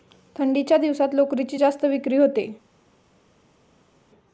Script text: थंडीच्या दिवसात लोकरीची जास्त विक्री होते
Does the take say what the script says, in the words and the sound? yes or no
yes